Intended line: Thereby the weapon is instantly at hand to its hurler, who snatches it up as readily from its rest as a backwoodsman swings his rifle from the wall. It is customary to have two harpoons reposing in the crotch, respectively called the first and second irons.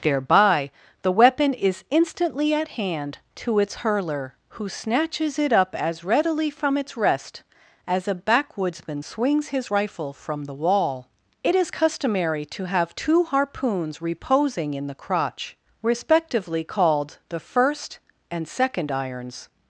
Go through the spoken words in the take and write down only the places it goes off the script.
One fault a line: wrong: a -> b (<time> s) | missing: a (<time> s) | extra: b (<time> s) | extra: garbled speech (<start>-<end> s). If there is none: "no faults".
no faults